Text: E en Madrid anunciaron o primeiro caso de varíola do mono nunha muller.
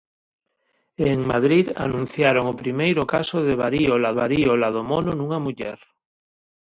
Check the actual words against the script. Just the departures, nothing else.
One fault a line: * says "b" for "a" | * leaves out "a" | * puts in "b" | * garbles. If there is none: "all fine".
* puts in "varíola"